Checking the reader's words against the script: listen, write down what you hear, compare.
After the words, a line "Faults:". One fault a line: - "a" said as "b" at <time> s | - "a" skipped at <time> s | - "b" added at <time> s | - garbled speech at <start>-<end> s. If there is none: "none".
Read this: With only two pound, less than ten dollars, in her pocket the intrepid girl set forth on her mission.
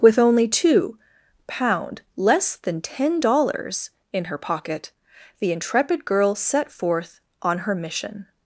With only two pound, less than ten dollars, in her pocket the intrepid girl set forth on her mission.
Faults:
none